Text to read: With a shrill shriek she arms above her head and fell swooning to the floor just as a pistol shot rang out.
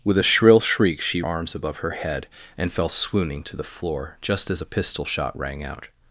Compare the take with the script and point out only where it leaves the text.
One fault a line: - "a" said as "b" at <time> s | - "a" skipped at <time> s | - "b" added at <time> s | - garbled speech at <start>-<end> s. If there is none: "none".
none